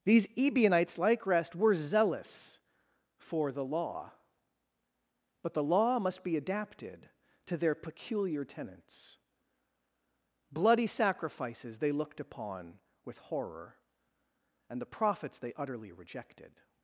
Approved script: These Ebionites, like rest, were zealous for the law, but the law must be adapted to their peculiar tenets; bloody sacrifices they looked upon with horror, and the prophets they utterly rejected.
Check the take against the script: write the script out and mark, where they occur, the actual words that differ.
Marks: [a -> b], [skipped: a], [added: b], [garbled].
These Ebionites, like rest, were zealous for the law, but the law must be adapted to their peculiar tenets; bloody sacrifices they looked upon with horror, and the prophets they utterly rejected.